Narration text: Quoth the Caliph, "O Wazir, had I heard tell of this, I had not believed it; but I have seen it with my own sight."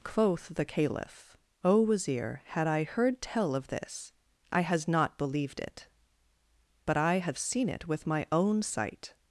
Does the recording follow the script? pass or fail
fail